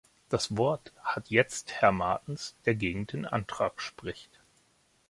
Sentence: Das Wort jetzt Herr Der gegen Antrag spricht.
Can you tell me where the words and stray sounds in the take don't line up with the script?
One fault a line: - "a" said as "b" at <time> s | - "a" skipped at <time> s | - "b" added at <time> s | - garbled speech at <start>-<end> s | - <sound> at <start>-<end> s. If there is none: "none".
- "hat" added at 1.0 s
- "Martens" added at 1.9 s
- "den" added at 3.1 s